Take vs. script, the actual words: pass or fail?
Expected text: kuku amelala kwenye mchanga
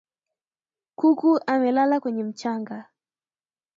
pass